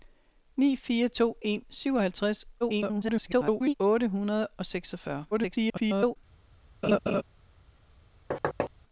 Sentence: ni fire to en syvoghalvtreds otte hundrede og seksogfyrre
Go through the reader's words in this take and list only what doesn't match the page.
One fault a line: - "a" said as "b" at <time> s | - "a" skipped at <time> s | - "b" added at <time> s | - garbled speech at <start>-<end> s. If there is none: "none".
- garbled speech at 2.6-3.7 s
- garbled speech at 5.3-6.2 s